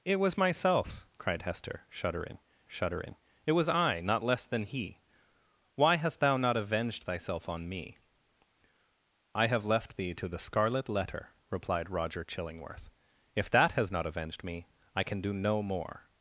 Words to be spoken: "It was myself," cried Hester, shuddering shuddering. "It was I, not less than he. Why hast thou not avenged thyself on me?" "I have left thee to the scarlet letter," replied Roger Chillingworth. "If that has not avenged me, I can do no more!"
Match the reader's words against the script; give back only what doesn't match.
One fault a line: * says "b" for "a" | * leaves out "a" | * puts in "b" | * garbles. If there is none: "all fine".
all fine